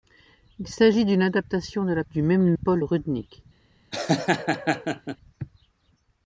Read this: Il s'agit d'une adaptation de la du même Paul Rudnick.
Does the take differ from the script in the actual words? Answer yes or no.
no